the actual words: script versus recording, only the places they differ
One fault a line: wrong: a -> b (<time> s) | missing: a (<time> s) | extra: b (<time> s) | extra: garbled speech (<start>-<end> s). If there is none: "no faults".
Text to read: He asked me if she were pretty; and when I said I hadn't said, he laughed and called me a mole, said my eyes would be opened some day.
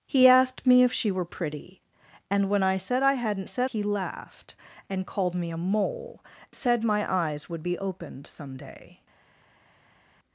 no faults